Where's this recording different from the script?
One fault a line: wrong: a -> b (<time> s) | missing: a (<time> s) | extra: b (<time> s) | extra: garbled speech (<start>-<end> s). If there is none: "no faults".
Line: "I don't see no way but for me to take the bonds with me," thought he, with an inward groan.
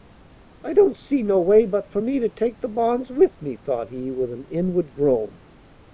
no faults